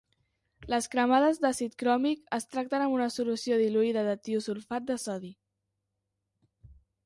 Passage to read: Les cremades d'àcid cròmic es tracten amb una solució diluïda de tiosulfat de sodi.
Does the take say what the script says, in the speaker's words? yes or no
yes